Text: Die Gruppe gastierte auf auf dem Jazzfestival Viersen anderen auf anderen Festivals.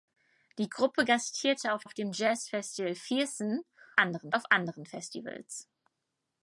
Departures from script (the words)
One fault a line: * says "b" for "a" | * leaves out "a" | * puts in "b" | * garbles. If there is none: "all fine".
all fine